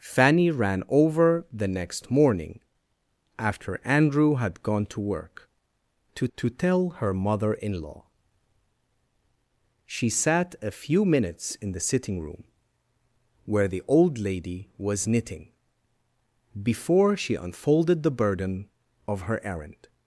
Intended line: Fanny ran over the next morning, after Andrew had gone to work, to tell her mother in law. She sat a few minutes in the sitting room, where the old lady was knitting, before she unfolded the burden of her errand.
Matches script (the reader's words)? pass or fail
fail